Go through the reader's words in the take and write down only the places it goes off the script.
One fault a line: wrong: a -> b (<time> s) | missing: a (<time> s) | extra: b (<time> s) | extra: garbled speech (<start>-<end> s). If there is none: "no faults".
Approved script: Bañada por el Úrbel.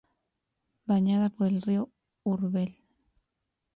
extra: río (1.6 s)